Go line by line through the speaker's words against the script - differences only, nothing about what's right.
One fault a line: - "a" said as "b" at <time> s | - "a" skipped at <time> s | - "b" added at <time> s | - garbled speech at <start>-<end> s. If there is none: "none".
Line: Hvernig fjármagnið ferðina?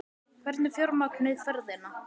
none